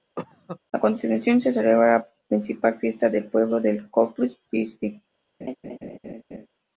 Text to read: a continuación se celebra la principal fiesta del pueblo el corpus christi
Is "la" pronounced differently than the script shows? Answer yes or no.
no